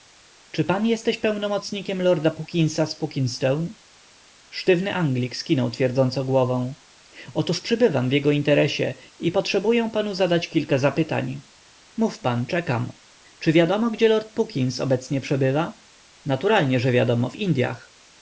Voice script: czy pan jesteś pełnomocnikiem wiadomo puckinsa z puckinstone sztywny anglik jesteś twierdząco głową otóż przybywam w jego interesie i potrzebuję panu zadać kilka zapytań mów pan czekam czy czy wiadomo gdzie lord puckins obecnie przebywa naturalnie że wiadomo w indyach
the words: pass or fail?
fail